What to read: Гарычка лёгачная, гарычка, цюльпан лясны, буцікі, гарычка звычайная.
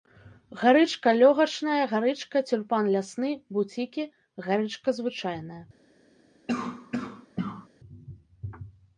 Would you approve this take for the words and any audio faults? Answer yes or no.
no